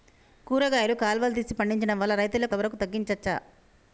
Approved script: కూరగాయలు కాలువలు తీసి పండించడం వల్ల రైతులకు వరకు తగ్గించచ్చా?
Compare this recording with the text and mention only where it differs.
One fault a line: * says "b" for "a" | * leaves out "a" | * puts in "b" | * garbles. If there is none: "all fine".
all fine